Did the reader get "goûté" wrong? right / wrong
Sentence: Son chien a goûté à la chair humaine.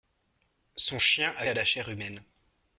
wrong